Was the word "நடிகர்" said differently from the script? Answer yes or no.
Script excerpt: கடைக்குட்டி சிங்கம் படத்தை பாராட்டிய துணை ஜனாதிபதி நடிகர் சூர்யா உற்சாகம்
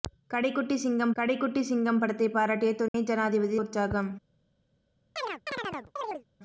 yes